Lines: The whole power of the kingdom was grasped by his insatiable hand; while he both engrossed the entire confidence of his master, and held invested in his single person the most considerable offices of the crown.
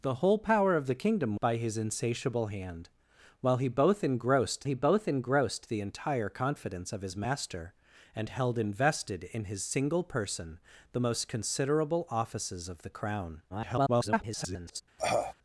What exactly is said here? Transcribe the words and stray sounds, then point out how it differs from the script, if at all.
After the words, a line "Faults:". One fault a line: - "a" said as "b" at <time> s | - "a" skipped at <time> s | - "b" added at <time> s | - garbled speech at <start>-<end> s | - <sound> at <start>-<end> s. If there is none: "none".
The whole power of the kingdom by his insatiable hand; while he both engrossed he both engrossed the entire confidence of his master, and held invested in his single person the most considerable offices of the crown. [garbled]
Faults:
- "was grasped" skipped at 1.4 s
- "he both engrossed" added at 4.6 s
- garbled speech at 13.5-14.8 s
- cough at 15.0-15.3 s